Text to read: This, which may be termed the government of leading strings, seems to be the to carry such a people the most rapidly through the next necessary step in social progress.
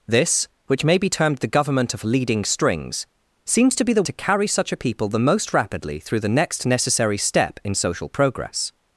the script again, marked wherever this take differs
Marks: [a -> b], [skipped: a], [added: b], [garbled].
This, which may be termed the government of leading strings, seems to be the to carry such a people the most rapidly through the next necessary step in social progress.